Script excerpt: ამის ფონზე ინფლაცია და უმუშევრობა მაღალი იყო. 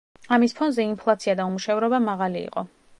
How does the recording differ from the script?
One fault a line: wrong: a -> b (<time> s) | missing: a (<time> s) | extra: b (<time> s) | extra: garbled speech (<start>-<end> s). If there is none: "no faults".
no faults